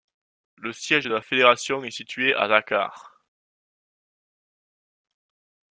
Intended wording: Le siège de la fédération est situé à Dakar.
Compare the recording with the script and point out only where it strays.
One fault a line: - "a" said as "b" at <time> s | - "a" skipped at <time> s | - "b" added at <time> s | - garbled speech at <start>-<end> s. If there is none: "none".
none